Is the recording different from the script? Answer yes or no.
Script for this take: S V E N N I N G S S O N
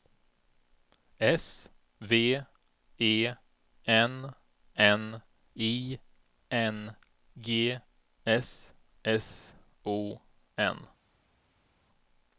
no